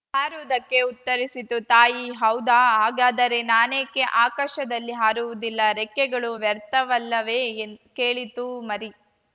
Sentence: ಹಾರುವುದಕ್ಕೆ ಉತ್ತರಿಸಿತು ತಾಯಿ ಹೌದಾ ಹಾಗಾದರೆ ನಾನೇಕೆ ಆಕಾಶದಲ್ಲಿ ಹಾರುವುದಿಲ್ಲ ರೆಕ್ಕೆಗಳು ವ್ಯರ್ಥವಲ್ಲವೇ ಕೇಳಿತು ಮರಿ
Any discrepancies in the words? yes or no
no